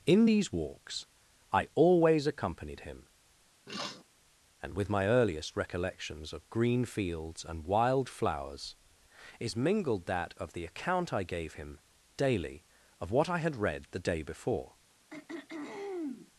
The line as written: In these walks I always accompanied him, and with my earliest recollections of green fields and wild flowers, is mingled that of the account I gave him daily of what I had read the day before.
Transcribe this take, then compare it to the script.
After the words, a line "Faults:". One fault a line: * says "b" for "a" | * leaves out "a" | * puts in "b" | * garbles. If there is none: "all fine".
In these walks I always accompanied him, and with my earliest recollections of green fields and wild flowers, is mingled that of the account I gave him daily of what I had read the day before.
Faults:
all fine